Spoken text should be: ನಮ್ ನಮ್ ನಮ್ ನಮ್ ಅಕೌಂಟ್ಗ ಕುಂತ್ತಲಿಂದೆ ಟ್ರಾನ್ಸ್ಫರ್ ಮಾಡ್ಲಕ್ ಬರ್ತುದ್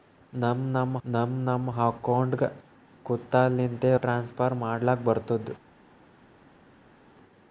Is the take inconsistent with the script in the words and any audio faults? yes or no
no